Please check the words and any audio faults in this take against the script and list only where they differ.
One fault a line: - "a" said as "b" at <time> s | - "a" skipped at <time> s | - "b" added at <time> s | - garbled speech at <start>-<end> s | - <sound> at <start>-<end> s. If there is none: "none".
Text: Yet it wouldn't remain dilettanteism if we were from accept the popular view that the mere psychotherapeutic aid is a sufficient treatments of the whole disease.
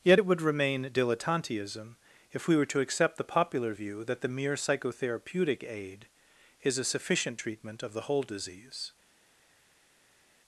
- "wouldn't" said as "would" at 0.3 s
- "from" said as "to" at 2.7 s
- "treatments" said as "treatment" at 7.4 s